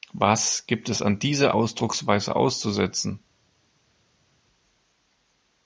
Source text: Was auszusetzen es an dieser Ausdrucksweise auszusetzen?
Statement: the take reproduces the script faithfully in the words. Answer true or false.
false